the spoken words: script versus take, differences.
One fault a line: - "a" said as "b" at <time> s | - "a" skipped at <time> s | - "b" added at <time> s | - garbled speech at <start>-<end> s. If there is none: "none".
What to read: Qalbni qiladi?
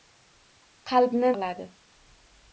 none